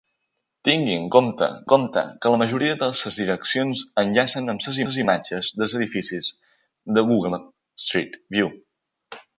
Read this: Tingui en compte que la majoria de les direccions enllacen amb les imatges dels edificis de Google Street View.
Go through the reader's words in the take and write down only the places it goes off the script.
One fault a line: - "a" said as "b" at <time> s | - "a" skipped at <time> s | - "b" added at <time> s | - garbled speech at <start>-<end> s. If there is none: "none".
- "compte" added at 1.7 s
- "les" added at 4.9 s